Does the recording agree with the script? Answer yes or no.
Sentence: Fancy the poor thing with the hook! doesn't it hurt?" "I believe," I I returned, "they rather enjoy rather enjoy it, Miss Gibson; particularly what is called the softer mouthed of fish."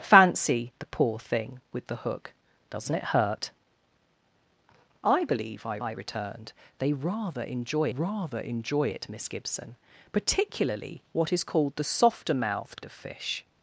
yes